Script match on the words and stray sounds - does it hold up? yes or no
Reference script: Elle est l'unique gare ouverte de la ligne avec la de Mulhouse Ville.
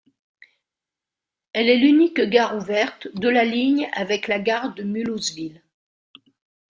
no